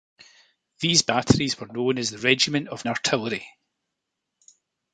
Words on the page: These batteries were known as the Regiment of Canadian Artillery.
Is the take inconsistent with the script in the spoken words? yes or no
yes